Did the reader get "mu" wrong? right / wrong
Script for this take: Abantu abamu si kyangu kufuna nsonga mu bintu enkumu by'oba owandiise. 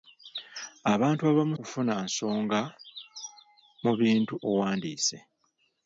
right